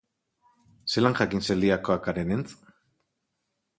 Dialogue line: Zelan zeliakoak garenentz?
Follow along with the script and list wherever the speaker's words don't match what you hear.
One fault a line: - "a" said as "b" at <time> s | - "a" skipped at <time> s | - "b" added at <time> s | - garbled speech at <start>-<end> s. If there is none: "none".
- "jakin" added at 1.2 s